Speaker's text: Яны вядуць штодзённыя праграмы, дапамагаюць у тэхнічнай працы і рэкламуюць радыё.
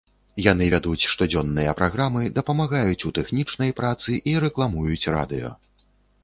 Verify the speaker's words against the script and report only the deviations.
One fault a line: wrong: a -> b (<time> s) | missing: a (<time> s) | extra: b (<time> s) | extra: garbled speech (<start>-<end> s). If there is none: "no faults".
no faults